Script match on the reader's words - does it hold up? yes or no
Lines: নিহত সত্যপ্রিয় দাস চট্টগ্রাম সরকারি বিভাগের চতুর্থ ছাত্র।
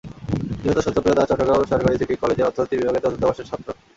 no